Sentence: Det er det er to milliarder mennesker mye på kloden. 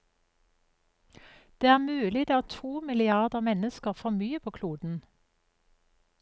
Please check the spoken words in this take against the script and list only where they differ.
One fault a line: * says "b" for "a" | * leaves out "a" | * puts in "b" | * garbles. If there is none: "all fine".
* puts in "mulig"
* puts in "for"